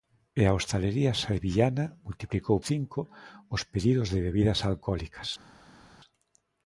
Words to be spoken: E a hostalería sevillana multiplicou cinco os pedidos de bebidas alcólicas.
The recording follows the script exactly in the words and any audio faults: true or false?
true